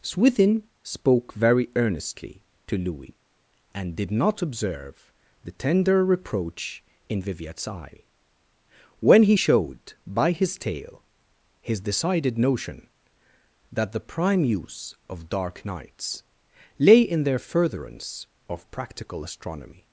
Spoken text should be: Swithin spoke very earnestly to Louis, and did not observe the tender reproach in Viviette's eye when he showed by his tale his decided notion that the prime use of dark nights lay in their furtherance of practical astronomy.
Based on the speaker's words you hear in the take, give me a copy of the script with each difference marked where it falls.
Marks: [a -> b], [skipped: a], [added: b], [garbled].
Swithin spoke very earnestly to Louis, and did not observe the tender reproach in Viviette's eye when he showed by his tale his decided notion that the prime use of dark nights lay in their furtherance of practical astronomy.